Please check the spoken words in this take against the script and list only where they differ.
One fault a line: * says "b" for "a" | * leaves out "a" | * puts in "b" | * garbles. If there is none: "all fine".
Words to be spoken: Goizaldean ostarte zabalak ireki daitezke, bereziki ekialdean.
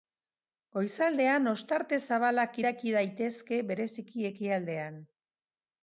all fine